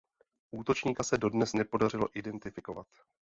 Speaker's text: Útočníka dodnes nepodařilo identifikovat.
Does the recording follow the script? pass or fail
fail